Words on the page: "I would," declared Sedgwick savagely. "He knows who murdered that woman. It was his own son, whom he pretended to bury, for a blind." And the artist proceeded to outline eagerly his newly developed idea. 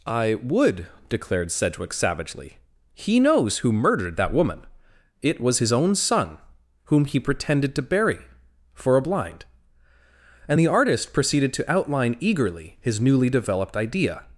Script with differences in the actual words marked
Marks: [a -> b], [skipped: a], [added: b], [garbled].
"I would," declared Sedgwick savagely. "He knows who murdered that woman. It was his own son, whom he pretended to bury, for a blind." And the artist proceeded to outline eagerly his newly developed idea.